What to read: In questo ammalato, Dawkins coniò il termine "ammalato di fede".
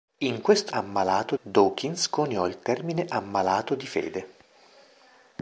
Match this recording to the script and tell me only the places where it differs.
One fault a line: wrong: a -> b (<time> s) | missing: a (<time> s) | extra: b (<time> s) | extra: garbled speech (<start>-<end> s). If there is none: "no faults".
no faults